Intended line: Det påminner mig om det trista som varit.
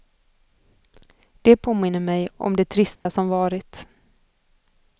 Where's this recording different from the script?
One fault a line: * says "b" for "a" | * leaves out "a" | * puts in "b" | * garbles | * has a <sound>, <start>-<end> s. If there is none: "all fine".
* has a dropout, 3.0-3.1 s